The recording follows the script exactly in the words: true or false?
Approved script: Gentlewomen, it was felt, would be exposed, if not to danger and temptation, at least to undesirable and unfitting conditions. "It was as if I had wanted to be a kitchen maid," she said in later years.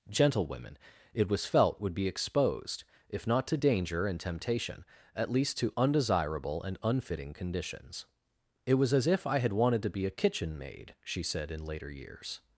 true